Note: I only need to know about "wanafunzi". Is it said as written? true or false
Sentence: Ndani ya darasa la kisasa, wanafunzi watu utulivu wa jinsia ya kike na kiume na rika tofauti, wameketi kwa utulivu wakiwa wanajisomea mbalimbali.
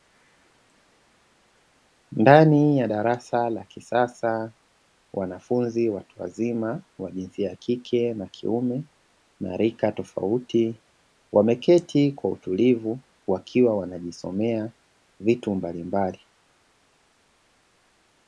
true